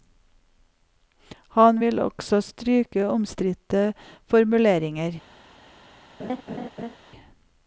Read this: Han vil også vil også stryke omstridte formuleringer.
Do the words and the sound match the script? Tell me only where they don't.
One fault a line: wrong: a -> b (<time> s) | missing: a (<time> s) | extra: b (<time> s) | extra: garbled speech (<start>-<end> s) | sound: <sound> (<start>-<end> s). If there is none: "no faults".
missing: vil også (2.4 s)
sound: laugh (6.2-7.0 s)